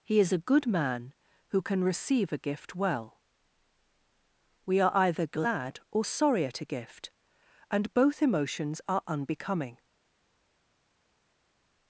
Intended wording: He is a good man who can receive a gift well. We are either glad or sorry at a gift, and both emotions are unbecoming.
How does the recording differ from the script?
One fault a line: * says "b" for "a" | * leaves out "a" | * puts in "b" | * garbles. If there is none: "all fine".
all fine